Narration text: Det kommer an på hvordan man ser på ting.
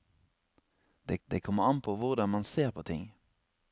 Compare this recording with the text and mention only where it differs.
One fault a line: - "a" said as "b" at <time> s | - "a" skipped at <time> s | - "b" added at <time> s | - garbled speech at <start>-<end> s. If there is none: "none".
- "det" added at 1.3 s